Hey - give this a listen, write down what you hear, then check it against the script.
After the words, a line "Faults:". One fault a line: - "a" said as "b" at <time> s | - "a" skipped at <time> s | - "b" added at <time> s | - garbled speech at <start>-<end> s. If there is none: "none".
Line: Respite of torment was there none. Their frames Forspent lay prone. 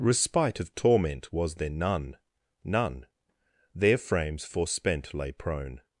Respite of torment was there none none. Their frames Forspent lay prone.
Faults:
- "none" added at 2.6 s